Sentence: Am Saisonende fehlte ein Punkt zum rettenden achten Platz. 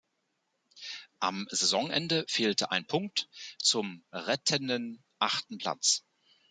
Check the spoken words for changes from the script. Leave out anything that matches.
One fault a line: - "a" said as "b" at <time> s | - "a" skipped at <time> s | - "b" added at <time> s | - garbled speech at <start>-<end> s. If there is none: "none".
none